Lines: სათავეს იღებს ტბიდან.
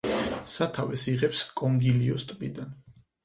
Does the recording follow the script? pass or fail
fail